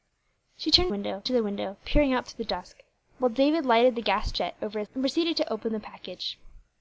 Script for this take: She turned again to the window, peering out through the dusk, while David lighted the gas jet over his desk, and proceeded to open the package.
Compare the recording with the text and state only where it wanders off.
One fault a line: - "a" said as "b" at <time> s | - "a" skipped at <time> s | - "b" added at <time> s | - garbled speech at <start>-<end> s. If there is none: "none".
- "again" said as "window" at 0.9 s
- "desk" skipped at 4.9 s